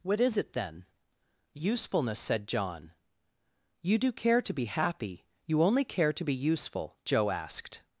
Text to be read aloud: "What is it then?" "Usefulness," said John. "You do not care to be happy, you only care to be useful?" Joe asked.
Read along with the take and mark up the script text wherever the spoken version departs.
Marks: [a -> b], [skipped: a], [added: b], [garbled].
"What is it then?" "Usefulness," said John. "You do [skipped: not] care to be happy, you only care to be useful?" Joe asked.